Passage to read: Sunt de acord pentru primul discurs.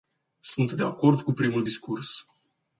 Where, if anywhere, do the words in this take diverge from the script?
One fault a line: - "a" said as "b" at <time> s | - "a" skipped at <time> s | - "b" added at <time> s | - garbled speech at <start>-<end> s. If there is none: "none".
- "pentru" said as "cu" at 1.2 s